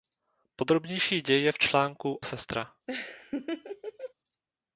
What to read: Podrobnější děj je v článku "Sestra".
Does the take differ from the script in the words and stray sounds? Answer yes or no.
yes